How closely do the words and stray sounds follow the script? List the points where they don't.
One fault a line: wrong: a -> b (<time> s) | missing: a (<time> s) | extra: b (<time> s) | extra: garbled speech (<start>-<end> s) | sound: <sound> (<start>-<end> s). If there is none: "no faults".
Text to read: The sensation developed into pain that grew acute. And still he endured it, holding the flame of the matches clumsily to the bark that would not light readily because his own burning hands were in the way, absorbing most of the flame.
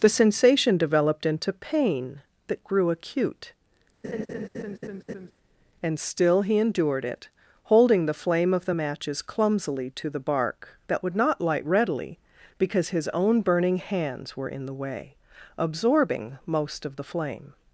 sound: laugh (4.0-5.3 s)